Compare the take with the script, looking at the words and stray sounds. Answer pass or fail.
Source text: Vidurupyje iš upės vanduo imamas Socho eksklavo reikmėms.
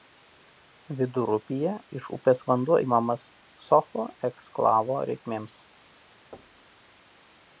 fail